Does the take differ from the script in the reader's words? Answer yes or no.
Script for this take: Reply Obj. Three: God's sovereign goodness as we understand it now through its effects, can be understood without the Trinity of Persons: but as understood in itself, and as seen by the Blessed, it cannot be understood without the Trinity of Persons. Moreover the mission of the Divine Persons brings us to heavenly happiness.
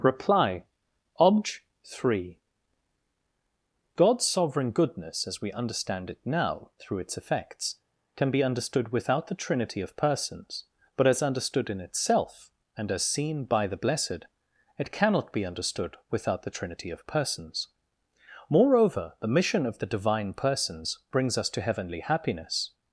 no